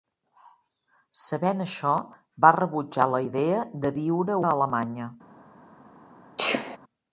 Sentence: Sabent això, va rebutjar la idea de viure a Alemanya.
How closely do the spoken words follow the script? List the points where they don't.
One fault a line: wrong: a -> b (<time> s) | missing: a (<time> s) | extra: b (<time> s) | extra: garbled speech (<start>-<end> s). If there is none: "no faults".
no faults